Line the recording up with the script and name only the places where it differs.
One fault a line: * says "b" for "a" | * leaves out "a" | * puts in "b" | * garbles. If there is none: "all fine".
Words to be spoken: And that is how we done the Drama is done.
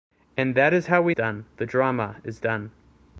all fine